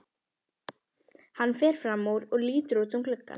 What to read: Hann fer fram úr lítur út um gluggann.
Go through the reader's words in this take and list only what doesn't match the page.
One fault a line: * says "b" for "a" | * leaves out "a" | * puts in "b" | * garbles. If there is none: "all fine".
* puts in "og"